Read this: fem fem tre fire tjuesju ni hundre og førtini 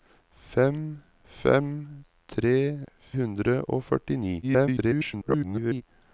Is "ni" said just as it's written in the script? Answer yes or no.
no